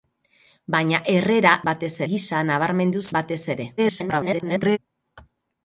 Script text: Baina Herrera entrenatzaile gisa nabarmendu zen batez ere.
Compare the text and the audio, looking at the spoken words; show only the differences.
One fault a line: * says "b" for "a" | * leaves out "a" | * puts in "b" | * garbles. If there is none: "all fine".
* says "batez" for "entrenatzaile"
* leaves out "zen"
* garbles